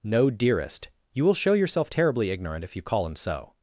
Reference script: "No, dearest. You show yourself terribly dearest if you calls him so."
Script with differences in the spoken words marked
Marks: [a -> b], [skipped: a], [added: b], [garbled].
"No, dearest. You [added: will] show yourself terribly [dearest -> ignorant] if you [calls -> call] him so."